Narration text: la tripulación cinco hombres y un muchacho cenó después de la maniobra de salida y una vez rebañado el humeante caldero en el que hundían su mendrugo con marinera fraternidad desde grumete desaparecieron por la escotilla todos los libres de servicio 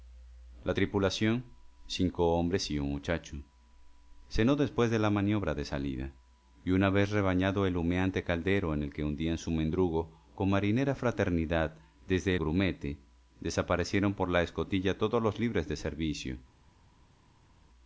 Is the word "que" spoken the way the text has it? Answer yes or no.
yes